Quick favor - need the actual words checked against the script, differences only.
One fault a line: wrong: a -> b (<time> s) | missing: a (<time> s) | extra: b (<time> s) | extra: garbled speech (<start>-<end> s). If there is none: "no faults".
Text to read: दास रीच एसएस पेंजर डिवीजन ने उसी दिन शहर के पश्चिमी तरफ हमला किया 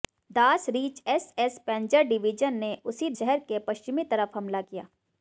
missing: दिन (3.1 s)